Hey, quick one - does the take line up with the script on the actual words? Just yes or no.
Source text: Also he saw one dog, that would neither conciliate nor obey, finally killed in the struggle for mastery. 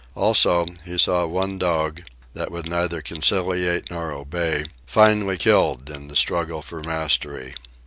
yes